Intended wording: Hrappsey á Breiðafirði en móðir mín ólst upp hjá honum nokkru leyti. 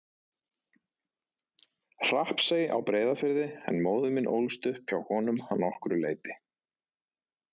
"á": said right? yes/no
yes